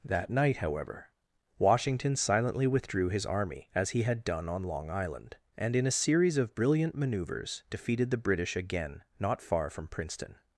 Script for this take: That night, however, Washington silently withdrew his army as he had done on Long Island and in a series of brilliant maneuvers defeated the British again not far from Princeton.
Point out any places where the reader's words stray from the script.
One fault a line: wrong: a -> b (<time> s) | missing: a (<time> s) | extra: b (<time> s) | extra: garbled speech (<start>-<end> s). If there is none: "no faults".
no faults